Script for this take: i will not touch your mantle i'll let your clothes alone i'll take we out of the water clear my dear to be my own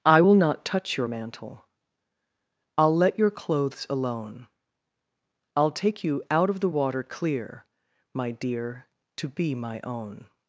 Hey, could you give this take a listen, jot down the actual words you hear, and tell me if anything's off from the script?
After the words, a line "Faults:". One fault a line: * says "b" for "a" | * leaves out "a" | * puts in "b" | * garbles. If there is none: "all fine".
i will not touch your mantle i'll let your clothes alone i'll take you out of the water clear my dear to be my own
Faults:
* says "you" for "we"